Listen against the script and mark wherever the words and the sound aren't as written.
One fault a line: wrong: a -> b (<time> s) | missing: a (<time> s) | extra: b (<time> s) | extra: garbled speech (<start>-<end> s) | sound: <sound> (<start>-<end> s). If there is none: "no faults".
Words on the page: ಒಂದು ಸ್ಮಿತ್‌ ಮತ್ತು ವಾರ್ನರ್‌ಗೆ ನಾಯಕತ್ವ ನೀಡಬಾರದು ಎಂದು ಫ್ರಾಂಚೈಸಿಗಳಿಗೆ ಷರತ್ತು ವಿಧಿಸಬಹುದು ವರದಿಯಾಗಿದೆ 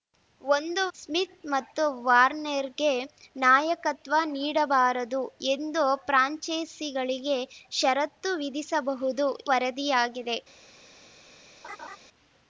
sound: laugh (11.6-12.0 s)